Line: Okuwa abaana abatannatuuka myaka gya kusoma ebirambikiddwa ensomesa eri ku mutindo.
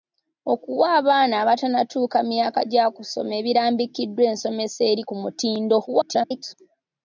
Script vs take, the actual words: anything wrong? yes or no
yes